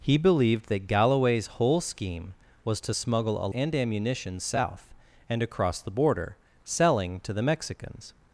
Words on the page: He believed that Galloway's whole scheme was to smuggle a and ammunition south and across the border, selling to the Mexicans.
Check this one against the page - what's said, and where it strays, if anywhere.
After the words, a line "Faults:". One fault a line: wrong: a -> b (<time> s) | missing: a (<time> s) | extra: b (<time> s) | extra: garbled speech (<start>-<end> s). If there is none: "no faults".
He believed that Galloway's whole scheme was to smuggle a and ammunition south and across the border, selling to the Mexicans.
Faults:
no faults